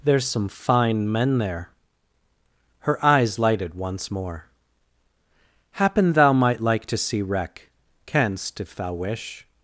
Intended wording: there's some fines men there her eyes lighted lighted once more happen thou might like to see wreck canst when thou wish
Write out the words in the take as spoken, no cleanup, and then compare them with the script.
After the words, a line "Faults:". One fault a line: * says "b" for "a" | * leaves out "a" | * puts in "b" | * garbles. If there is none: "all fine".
there's some fine men there her eyes lighted once more happen thou might like to see wreck canst if thou wish
Faults:
* says "fine" for "fines"
* leaves out "lighted"
* says "if" for "when"